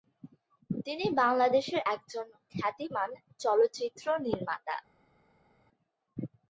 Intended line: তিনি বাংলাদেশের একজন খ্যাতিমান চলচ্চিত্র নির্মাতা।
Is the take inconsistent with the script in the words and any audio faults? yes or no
no